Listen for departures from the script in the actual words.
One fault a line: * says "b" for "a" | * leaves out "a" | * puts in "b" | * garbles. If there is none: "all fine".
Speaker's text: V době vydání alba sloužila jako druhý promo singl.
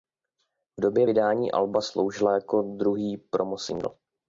all fine